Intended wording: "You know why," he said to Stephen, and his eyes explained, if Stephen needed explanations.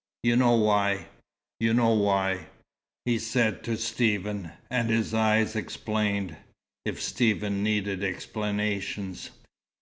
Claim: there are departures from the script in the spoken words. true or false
true